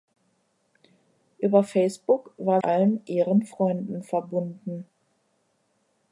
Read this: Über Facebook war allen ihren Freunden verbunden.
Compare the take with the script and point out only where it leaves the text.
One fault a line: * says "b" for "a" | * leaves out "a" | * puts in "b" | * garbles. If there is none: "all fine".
all fine